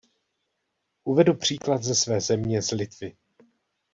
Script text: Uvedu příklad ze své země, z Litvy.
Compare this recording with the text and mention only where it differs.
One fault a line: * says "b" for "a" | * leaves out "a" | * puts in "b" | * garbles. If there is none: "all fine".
all fine